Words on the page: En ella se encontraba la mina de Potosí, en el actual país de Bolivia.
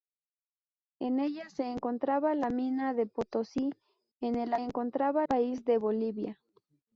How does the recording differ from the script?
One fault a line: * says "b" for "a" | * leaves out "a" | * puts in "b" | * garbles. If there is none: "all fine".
* says "encontraba" for "actual"